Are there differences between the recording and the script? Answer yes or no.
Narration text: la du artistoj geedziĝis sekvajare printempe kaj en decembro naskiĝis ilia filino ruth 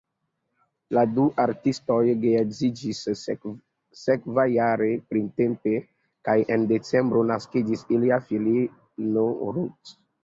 no